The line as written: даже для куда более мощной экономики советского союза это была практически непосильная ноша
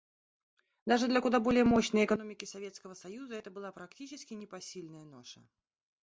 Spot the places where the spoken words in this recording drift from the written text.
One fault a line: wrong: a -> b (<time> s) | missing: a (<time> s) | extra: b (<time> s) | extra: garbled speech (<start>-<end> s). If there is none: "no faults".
no faults